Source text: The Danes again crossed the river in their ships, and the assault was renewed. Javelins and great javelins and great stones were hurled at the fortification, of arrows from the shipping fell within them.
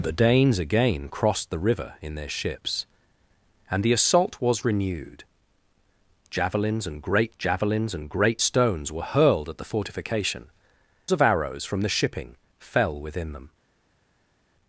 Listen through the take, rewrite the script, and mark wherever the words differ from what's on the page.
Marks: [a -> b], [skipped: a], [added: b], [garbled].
The Danes again crossed the river in their ships, and the assault was renewed. Javelins and great javelins and great stones were hurled at the fortification, of arrows from the shipping fell within them.